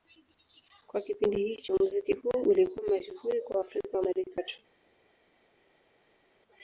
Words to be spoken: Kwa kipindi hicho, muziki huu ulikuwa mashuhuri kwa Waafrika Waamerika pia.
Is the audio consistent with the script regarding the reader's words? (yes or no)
no